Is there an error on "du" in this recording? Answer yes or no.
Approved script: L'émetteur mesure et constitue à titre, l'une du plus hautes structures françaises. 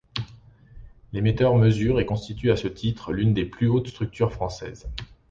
yes